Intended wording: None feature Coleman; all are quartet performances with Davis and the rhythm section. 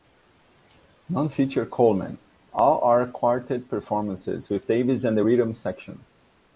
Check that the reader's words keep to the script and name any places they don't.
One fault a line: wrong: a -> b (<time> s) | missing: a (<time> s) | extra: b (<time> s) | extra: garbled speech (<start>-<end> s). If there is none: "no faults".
no faults